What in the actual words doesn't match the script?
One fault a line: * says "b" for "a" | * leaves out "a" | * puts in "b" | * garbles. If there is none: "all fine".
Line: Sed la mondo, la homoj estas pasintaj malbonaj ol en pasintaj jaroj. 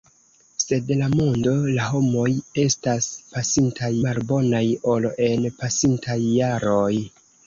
all fine